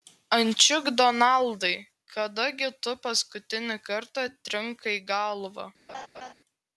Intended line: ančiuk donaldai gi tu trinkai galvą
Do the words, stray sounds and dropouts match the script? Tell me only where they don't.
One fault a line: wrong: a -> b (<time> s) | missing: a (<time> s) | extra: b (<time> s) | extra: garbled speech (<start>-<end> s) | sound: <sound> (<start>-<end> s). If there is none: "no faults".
extra: kada (2.1 s)
extra: paskutinį kartą (3.0 s)
sound: laugh (5.9-6.3 s)